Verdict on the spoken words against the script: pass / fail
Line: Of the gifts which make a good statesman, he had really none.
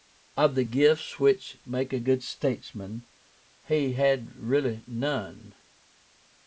pass